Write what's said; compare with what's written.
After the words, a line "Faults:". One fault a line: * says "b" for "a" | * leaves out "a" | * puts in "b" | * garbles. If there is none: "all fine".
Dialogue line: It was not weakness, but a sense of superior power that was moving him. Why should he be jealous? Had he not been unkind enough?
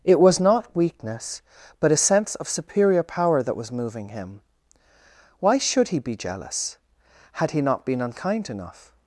It was not weakness, but a sense of superior power that was moving him. Why should he be jealous? Had he not been unkind enough?
Faults:
all fine